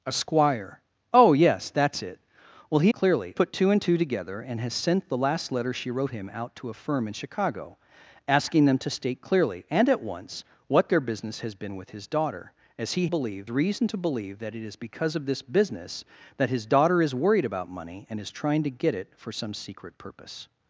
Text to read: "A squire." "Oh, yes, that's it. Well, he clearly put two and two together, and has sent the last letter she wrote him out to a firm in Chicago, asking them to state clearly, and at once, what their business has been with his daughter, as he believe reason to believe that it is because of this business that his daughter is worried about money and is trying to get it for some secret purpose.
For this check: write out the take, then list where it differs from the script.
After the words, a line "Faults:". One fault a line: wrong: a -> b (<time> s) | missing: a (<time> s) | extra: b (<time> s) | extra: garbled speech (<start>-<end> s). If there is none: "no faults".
"A squire." "Oh, yes, that's it. Well, he clearly put two and two together, and has sent the last letter she wrote him out to a firm in Chicago, asking them to state clearly, and at once, what their business has been with his daughter, as he believe reason to believe that it is because of this business that his daughter is worried about money and is trying to get it for some secret purpose.
Faults:
no faults